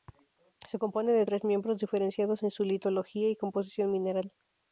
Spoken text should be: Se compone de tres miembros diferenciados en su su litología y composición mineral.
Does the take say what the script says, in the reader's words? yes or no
no